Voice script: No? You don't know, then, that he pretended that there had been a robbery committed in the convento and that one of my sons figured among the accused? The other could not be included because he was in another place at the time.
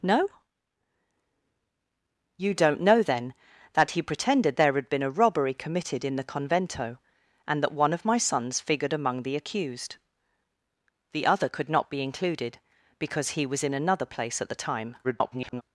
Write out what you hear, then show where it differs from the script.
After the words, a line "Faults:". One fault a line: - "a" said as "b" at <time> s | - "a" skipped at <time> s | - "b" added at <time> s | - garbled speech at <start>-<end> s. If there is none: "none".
No? You don't know, then, that he pretended there had been a robbery committed in the convento and that one of my sons figured among the accused? The other could not be included because he was in another place at the time. [garbled]
Faults:
- "that" skipped at 4.6 s
- garbled speech at 15.0-15.6 s